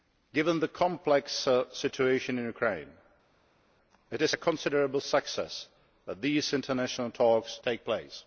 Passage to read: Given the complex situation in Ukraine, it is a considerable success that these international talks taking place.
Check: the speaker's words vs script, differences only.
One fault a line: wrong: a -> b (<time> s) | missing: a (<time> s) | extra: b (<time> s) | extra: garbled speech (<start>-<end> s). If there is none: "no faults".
no faults